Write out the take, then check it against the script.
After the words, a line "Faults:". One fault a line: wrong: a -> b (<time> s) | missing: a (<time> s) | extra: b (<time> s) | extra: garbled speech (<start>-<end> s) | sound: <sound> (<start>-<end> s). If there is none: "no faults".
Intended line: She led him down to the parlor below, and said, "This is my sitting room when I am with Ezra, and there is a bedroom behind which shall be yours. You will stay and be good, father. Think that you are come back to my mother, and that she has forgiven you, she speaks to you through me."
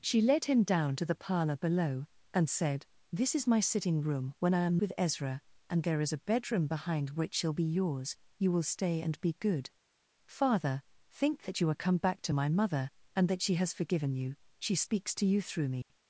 She led him down to the parlor below, and said, "This is my sitting room when I am with Ezra, and there is a bedroom behind which shall be yours. You will stay and be good, father. Think that you are come back to my mother, and that she has forgiven you, she speaks to you through me."
Faults:
sound: dropout (15.8-15.9 s)